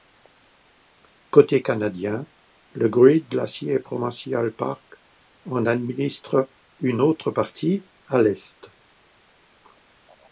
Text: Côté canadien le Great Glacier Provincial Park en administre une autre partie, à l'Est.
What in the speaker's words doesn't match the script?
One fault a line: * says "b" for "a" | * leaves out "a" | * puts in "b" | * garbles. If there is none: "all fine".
all fine